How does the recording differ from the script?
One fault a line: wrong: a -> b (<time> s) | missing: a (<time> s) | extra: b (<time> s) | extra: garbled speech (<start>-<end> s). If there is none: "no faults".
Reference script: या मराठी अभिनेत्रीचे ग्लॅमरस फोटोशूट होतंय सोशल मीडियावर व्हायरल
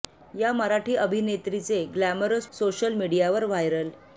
missing: फोटोशूट होतंय (2.5 s)